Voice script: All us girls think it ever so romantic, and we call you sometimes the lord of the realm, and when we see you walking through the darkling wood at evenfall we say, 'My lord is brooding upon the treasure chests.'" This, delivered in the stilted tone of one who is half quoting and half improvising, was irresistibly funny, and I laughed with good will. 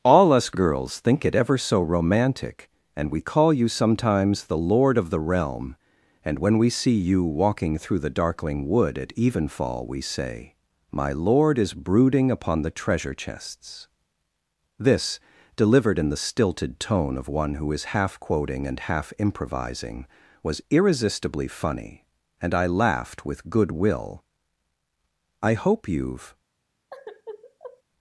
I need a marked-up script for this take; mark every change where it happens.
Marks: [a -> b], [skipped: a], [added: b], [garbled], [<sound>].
All us girls think it ever so romantic, and we call you sometimes the lord of the realm, and when we see you walking through the darkling wood at evenfall we say, 'My lord is brooding upon the treasure chests.'" This, delivered in the stilted tone of one who is half quoting and half improvising, was irresistibly funny, and I laughed with good will. [added: I hope you've] [sigh]